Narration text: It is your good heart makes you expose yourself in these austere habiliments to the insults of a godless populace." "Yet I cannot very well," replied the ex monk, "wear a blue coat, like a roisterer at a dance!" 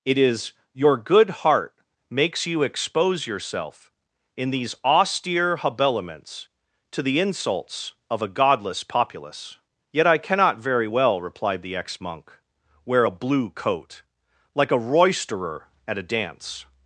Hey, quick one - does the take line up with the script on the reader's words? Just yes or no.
yes